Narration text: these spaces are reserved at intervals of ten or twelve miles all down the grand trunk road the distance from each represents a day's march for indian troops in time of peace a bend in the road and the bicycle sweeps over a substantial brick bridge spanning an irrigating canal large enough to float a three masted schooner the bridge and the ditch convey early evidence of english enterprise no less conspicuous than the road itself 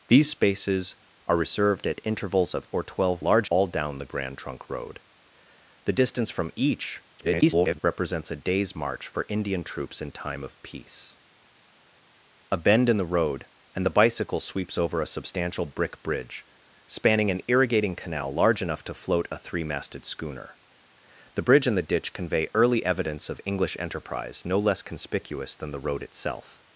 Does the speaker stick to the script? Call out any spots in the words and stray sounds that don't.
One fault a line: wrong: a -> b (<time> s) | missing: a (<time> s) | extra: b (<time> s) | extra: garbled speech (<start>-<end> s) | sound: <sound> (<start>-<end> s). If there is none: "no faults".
missing: ten (2.7 s)
wrong: miles -> large (3.2 s)
extra: garbled speech (7.2-7.8 s)